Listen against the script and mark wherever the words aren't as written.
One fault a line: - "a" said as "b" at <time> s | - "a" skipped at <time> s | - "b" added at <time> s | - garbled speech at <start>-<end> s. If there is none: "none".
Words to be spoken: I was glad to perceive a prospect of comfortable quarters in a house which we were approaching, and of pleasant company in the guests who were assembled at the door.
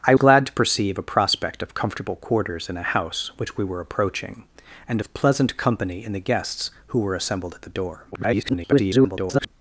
- "was" skipped at 0.1 s
- garbled speech at 8.1-9.5 s